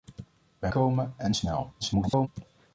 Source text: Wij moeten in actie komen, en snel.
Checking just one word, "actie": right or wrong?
wrong